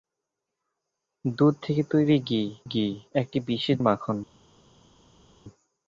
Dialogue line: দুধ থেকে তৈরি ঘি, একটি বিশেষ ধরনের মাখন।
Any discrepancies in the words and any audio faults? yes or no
yes